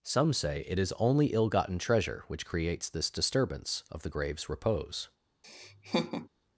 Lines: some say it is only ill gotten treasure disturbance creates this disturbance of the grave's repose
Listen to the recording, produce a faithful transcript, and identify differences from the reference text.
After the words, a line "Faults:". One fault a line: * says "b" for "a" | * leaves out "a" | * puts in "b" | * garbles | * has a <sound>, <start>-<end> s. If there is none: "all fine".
some say it is only ill gotten treasure which creates this disturbance of the grave's repose
Faults:
* says "which" for "disturbance"
* has a laugh, 5.4-6.3 s